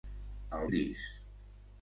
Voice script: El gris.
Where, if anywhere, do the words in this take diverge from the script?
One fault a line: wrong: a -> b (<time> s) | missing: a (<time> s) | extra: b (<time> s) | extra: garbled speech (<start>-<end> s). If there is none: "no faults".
no faults